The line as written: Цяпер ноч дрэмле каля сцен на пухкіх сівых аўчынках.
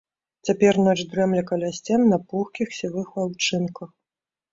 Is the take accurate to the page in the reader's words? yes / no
yes